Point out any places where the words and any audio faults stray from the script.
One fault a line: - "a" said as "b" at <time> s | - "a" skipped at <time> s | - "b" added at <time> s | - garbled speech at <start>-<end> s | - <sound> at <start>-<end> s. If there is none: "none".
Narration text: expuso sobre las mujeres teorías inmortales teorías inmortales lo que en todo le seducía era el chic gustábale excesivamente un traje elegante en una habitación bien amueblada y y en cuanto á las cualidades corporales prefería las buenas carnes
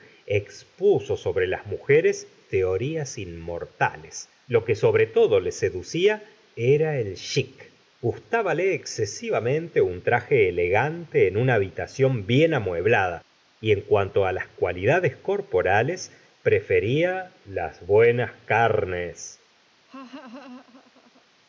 - "teorías inmortales" skipped at 4.3 s
- "en" said as "sobre" at 4.8 s
- "y" skipped at 13.7 s
- laugh at 19.9-21.3 s